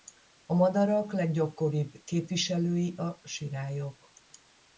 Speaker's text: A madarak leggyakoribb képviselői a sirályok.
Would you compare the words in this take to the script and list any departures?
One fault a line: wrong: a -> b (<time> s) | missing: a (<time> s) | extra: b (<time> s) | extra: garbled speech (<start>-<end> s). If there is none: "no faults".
no faults